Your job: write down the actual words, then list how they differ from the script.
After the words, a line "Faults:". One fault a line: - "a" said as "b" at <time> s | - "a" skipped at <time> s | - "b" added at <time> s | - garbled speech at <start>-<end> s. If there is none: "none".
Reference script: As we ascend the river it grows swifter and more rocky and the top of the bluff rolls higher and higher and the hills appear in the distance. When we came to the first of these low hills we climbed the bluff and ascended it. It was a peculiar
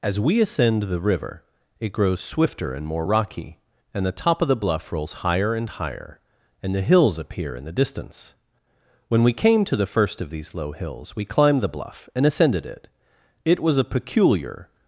As we ascend the river it grows swifter and more rocky and the top of the bluff rolls higher and higher and the hills appear in the distance. When we came to the first of these low hills we climbed the bluff and ascended it. It was a peculiar
Faults:
none